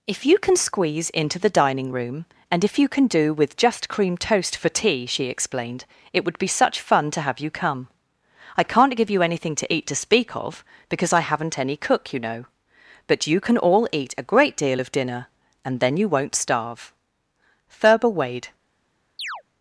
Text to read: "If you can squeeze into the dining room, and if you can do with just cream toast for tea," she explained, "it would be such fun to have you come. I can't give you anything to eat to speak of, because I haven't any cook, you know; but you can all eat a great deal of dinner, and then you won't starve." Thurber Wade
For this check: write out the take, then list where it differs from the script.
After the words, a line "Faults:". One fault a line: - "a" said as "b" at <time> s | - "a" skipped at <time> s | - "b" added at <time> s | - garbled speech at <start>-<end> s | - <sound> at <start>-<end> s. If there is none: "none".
"If you can squeeze into the dining room, and if you can do with just cream toast for tea," she explained, "it would be such fun to have you come. I can't give you anything to eat to speak of, because I haven't any cook, you know; but you can all eat a great deal of dinner, and then you won't starve." Thurber Wade
Faults:
- chirp at 19.2-19.4 s